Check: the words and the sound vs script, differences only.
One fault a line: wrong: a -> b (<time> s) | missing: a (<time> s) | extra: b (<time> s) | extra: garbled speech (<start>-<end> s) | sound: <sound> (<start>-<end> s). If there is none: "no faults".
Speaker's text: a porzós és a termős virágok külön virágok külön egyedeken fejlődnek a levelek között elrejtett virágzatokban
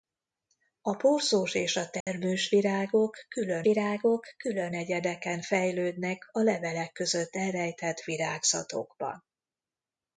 sound: dropout (2.0-2.1 s)